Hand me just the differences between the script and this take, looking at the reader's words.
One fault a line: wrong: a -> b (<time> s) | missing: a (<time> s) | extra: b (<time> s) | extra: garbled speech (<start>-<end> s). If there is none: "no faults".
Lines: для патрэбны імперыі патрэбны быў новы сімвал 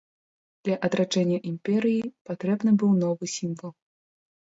wrong: патрэбны -> адраджэння (0.9 s)